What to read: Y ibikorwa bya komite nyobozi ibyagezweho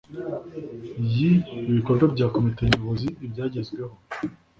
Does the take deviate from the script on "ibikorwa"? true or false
false